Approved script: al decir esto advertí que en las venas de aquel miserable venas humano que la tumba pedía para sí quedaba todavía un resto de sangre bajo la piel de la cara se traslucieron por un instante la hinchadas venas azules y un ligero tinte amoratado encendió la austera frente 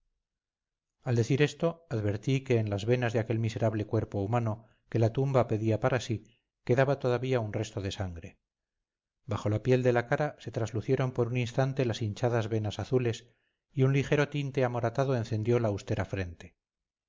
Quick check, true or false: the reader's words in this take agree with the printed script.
false